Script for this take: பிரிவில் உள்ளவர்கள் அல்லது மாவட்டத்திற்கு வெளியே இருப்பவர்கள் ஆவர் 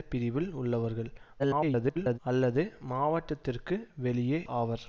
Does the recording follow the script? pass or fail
fail